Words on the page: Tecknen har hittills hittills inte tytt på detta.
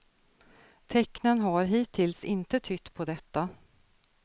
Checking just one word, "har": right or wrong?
right